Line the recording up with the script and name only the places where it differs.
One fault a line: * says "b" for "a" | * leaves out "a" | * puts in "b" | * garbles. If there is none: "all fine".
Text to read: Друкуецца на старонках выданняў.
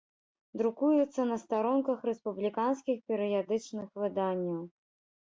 * puts in "рэспубліканскіх перыядычных"